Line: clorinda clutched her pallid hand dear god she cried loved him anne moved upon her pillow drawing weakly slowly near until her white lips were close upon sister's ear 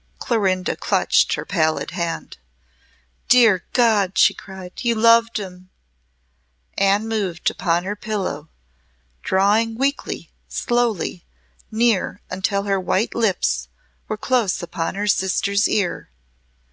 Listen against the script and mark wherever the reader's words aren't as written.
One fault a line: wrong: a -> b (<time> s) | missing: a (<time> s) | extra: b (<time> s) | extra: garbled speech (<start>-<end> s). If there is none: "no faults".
extra: you (4.8 s)
extra: her (14.9 s)